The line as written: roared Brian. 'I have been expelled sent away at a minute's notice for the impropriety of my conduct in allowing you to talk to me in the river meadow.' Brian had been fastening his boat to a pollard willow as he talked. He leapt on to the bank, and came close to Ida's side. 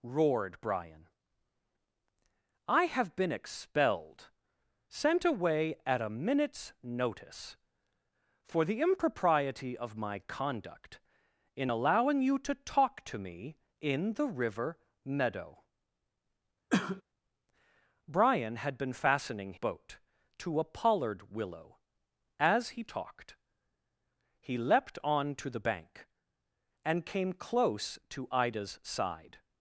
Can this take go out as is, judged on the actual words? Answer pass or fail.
fail